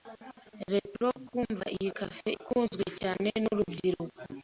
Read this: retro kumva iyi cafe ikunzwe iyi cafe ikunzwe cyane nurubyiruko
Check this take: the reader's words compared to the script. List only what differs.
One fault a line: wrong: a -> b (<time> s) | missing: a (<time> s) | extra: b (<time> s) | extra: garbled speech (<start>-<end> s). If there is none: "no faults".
missing: iyi cafe ikunzwe (2.8 s)